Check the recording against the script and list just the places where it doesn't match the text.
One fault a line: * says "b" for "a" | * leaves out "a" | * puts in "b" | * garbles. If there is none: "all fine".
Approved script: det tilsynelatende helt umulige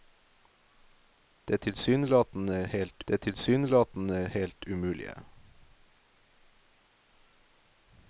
* puts in "det tilsynelatende helt"